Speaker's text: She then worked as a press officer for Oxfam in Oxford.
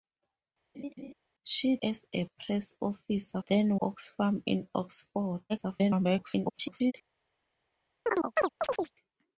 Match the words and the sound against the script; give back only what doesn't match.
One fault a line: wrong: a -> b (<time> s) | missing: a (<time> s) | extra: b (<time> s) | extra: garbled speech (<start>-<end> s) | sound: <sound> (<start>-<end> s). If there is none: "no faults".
sound: laugh (0.7-1.1 s)
missing: then worked (1.8 s)
wrong: for -> then (3.4 s)
extra: garbled speech (5.5-6.9 s)
sound: chirp (8.1-8.9 s)